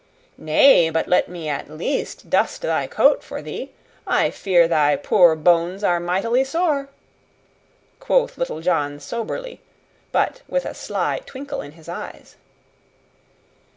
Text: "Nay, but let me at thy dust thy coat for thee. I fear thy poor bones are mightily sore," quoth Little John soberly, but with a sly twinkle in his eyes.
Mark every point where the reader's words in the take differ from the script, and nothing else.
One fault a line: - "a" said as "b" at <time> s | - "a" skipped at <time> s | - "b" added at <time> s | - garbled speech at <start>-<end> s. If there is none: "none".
- "thy" said as "least" at 1.7 s